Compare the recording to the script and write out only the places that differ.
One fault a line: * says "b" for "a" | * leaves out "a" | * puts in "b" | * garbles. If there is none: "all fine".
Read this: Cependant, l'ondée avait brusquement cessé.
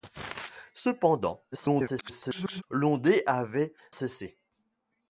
* garbles
* leaves out "brusquement"